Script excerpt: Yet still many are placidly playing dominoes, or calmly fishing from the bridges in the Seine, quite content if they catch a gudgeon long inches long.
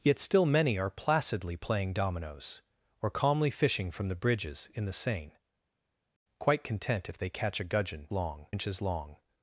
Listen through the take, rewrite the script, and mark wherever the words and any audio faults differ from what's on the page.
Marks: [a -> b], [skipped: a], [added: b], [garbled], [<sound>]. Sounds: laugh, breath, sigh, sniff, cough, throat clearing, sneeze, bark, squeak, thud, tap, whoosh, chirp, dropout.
Yet still many are placidly playing dominoes, or calmly fishing from the bridges in the Seine, quite content if they catch a gudgeon long inches long.